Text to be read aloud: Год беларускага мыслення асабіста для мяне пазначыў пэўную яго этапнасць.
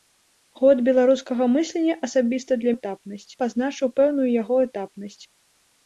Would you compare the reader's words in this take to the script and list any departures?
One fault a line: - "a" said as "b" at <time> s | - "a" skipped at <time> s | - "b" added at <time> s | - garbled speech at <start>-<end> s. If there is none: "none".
- "мяне" said as "этапнасць" at 2.8 s